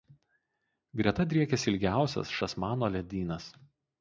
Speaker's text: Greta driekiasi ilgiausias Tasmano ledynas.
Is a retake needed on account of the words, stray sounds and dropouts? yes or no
no